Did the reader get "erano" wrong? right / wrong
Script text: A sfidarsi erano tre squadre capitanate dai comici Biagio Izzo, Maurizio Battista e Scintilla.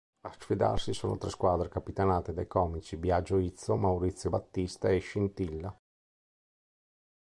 wrong